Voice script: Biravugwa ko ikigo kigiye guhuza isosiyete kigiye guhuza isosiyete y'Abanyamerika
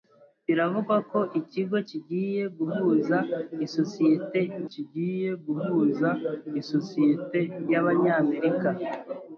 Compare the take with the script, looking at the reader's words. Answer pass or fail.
pass